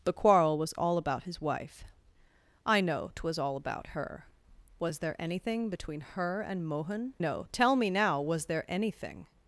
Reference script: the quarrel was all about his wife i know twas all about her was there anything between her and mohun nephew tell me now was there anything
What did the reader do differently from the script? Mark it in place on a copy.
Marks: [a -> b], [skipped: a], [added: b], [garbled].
the quarrel was all about his wife i know twas all about her was there anything between her and mohun [nephew -> know] tell me now was there anything